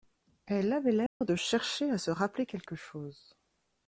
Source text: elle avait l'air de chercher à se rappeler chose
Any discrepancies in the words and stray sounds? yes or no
yes